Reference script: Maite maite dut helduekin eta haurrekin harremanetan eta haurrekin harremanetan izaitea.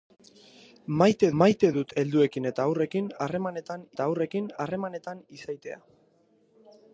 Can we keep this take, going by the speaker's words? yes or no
yes